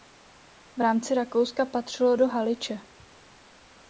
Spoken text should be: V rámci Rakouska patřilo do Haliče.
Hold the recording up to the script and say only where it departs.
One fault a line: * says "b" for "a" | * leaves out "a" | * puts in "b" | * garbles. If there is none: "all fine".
all fine